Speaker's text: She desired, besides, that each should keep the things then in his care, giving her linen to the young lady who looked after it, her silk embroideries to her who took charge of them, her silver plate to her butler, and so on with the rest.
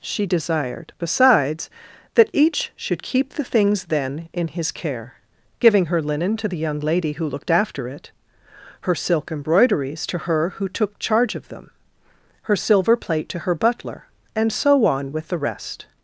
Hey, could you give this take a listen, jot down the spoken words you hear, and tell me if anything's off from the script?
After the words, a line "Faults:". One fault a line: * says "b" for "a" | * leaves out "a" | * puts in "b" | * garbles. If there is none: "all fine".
She desired, besides, that each should keep the things then in his care, giving her linen to the young lady who looked after it, her silk embroideries to her who took charge of them, her silver plate to her butler, and so on with the rest.
Faults:
all fine